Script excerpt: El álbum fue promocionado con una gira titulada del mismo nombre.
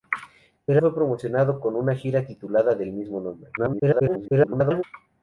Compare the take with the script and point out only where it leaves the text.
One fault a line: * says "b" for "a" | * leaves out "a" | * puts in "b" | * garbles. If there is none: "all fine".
* leaves out "álbum"
* garbles